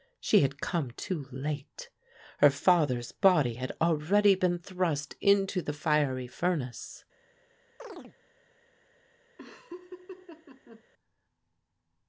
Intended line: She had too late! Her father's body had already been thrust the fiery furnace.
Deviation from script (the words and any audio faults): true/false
true